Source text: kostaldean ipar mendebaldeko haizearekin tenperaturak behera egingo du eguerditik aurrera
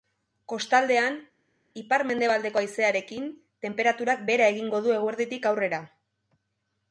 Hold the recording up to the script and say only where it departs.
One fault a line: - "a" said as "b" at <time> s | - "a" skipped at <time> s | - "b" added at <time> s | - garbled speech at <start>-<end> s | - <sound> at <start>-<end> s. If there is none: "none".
none